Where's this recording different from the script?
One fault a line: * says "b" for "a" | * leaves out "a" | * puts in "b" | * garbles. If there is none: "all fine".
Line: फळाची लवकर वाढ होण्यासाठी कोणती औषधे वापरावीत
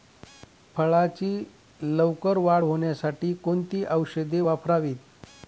all fine